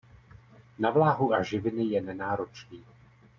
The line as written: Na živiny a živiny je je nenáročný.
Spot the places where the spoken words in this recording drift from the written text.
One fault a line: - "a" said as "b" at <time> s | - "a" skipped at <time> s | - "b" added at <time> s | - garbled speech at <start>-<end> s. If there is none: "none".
- "živiny" said as "vláhu" at 0.9 s
- "je" skipped at 2.0 s